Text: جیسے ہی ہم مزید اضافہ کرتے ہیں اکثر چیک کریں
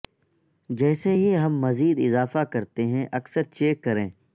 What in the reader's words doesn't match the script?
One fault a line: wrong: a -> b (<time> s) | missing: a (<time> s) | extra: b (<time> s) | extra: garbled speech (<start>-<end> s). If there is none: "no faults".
no faults